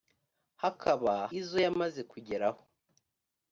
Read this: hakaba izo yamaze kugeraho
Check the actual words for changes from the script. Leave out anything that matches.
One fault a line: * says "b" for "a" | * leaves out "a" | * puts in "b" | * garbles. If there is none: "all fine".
all fine